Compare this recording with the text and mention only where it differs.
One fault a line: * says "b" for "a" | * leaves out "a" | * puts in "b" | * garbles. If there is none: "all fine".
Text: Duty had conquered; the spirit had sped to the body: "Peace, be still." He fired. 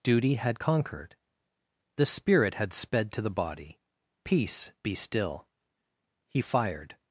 all fine